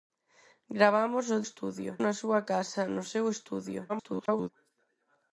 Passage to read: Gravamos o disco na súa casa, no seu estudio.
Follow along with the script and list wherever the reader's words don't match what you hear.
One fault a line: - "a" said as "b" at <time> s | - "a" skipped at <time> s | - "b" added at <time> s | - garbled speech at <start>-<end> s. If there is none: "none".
- "disco" said as "estudio" at 1.5 s
- garbled speech at 3.9-4.5 s